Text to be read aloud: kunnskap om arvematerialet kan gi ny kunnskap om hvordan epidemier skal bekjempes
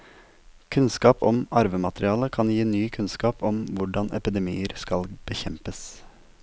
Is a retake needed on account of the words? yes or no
no